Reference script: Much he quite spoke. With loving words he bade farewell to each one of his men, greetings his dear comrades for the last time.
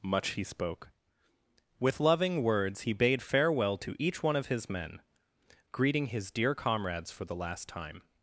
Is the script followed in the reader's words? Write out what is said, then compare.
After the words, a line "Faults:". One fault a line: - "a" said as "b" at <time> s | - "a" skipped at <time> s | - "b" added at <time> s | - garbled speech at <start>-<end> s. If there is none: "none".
Much he spoke. With loving words he bade farewell to each one of his men, greeting his dear comrades for the last time.
Faults:
- "quite" skipped at 0.4 s
- "greetings" said as "greeting" at 5.7 s